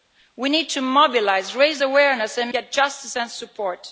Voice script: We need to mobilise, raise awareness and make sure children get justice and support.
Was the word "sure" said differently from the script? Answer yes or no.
yes